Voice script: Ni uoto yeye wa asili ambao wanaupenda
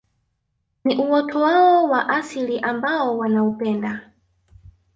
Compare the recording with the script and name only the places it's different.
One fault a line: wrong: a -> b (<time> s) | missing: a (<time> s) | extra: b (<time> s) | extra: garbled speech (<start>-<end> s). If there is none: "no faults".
wrong: yeye -> wao (1.4 s)